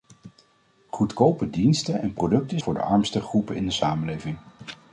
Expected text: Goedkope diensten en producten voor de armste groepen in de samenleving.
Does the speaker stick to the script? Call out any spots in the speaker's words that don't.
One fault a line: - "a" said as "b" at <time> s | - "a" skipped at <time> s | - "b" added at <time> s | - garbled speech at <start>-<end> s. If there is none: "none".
none